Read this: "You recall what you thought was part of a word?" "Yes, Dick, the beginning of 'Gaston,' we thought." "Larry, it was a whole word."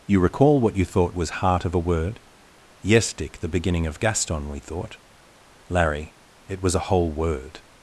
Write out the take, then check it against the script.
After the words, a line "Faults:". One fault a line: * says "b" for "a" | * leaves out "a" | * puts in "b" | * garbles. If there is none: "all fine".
"You recall what you thought was heart of a word?" "Yes, Dick, the beginning of 'Gaston,' we thought." "Larry, it was a whole word."
Faults:
* says "heart" for "part"